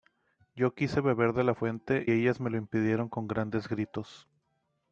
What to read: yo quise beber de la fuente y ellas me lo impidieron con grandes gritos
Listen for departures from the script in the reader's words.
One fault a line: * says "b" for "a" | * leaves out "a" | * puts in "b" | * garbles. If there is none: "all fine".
* leaves out "y"